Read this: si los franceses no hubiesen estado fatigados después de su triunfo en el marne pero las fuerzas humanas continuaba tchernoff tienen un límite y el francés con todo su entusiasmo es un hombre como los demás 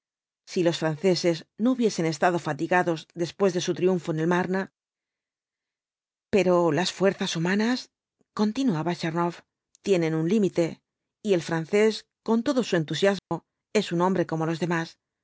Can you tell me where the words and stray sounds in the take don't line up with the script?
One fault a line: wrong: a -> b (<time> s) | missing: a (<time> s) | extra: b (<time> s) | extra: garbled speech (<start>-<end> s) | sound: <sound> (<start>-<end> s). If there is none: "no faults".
sound: dropout (13.2-13.3 s)